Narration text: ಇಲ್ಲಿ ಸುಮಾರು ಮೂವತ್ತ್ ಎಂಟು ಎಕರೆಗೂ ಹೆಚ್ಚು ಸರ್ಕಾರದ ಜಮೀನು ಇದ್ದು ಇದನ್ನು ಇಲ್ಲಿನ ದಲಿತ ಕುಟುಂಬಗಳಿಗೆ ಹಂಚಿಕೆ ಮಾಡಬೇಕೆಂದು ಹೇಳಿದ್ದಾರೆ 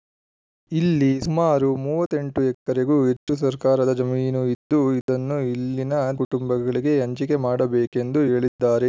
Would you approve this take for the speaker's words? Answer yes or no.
no